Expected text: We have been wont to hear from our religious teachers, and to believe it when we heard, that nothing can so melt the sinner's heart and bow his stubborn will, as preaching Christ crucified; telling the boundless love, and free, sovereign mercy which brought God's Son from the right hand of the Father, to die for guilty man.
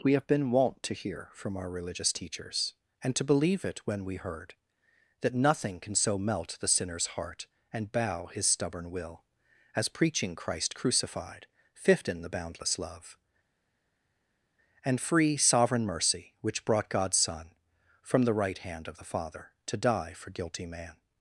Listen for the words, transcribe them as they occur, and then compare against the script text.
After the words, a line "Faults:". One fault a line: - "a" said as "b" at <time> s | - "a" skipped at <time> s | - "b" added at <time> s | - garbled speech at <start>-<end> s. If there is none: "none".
We have been wont to hear from our religious teachers, and to believe it when we heard, that nothing can so melt the sinner's heart and bow his stubborn will, as preaching Christ crucified; fifth in the boundless love, and free, sovereign mercy which brought God's Son from the right hand of the Father, to die for guilty man.
Faults:
- "telling" said as "fifth in" at 11.8 s